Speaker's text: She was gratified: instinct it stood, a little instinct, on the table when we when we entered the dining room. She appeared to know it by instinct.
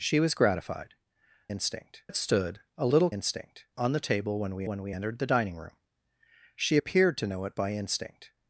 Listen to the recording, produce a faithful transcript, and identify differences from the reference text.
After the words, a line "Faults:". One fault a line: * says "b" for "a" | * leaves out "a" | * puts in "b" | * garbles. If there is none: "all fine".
She was gratified: instinct it stood, a little instinct, on the table when we when we entered the dining room. She appeared to know it by instinct.
Faults:
all fine